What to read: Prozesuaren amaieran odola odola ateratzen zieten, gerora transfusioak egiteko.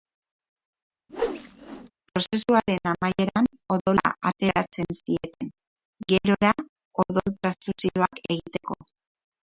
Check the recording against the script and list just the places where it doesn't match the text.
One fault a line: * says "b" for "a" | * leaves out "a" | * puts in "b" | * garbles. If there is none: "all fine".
* leaves out "odola"
* puts in "odol"